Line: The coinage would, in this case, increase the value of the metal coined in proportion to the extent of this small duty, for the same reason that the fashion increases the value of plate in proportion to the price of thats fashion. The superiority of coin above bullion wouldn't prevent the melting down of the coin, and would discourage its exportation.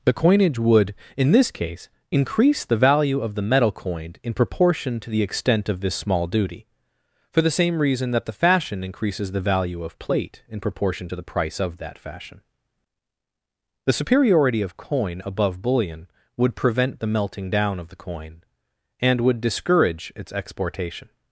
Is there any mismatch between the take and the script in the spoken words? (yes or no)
yes